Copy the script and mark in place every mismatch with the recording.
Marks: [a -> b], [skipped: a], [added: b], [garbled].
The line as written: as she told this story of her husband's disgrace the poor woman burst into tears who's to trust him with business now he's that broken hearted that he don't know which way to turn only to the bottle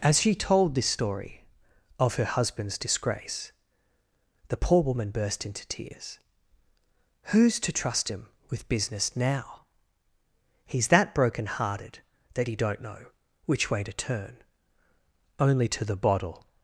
as she told this story of her husband's disgrace the poor woman burst into tears who's to trust him with business now he's that broken hearted that he don't know which way to turn only to the bottle